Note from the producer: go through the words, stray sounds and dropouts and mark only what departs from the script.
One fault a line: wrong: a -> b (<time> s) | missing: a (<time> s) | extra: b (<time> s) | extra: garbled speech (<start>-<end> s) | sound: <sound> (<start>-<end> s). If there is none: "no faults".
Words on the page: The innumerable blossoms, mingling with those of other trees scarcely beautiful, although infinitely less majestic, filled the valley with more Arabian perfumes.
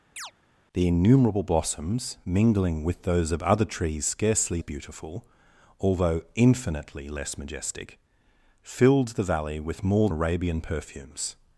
sound: chirp (0.2-0.3 s)